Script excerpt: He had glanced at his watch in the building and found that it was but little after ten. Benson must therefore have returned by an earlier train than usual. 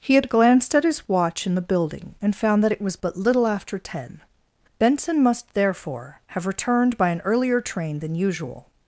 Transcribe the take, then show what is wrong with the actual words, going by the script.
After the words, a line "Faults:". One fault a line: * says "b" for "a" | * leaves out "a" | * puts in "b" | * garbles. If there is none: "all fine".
He had glanced at his watch in the building and found that it was but little after ten. Benson must therefore have returned by an earlier train than usual.
Faults:
all fine